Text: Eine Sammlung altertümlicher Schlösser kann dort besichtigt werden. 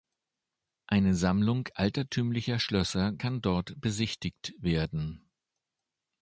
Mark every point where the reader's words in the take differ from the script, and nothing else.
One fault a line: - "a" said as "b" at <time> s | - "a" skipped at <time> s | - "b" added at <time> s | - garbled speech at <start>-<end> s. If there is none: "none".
none